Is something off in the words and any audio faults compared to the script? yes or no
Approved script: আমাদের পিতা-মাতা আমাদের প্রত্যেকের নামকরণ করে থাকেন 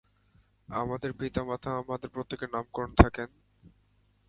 yes